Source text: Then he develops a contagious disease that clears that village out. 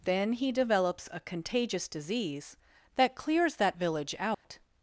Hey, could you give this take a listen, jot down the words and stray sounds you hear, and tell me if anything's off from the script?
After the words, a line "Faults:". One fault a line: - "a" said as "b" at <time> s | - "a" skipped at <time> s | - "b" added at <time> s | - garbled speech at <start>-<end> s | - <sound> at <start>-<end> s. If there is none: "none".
Then he develops a contagious disease that clears that village out.
Faults:
- dropout at 4.3-4.4 s